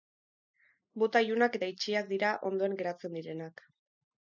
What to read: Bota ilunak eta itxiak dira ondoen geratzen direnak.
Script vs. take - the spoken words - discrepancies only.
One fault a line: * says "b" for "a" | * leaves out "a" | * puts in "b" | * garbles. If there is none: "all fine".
all fine